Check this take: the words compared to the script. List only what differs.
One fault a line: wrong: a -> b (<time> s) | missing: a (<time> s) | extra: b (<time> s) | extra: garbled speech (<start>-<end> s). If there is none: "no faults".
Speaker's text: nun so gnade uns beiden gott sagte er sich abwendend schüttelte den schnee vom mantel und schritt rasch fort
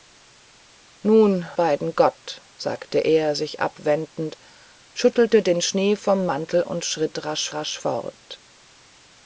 missing: so gnade uns (1.4 s)
extra: rasch (7.5 s)